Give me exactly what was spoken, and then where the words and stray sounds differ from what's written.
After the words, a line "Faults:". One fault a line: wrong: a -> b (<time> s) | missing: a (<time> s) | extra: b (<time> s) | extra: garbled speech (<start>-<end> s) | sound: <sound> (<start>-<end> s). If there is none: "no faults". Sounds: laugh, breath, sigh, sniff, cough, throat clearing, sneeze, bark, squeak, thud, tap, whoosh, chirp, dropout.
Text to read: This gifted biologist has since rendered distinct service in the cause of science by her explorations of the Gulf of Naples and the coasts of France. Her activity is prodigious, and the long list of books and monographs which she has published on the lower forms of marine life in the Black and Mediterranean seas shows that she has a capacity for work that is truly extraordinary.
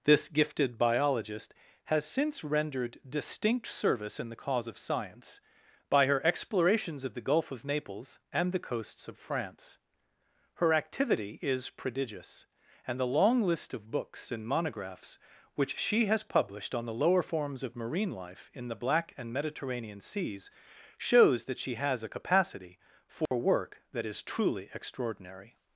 This gifted biologist has since rendered distinct service in the cause of science by her explorations of the Gulf of Naples and the coasts of France. Her activity is prodigious, and the long list of books and monographs which she has published on the lower forms of marine life in the Black and Mediterranean seas shows that she has a capacity for work that is truly extraordinary.
Faults:
sound: dropout (23.3-23.3 s)